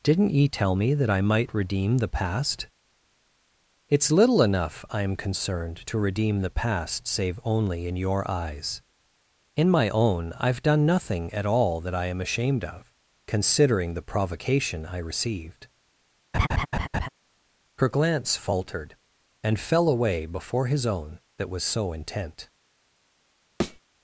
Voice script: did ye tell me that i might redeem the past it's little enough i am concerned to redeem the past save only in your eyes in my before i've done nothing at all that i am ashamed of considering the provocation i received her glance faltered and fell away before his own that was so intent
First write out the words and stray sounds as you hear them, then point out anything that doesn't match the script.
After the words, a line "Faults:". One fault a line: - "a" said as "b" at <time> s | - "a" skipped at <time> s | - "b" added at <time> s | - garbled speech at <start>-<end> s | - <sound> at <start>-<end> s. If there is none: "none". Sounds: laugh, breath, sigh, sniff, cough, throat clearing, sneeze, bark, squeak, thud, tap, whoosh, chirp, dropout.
didn't ye tell me that i might redeem the past it's little enough i am concerned to redeem the past save only in your eyes in my own i've done nothing at all that i am ashamed of considering the provocation i received her glance faltered and fell away before his own that was so intent
Faults:
- "did" said as "didn't" at 0.0 s
- "before" said as "own" at 9.9 s
- laugh at 16.3-17.1 s
- thud at 23.6-23.8 s